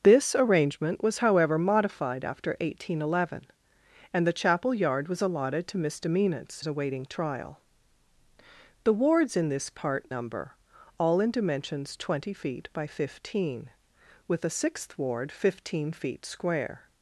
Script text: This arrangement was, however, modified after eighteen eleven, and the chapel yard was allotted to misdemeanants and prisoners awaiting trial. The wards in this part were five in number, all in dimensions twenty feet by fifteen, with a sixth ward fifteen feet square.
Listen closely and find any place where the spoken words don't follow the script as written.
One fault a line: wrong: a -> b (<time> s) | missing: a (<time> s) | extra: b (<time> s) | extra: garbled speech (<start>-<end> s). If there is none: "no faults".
missing: and prisoners (6.6 s)
missing: were five in (10.1 s)